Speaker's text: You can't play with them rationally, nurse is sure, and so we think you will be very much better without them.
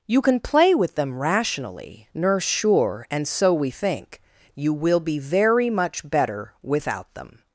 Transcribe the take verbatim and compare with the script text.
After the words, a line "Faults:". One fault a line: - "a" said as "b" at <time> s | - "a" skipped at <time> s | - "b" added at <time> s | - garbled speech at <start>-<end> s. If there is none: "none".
You can play with them rationally, nurse sure, and so we think you will be very much better without them.
Faults:
- "can't" said as "can" at 0.2 s
- "is" skipped at 2.4 s